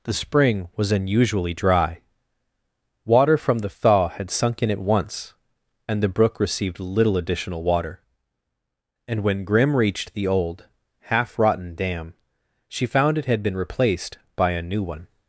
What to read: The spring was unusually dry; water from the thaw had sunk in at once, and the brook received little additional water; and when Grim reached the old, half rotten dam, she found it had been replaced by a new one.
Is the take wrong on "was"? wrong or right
right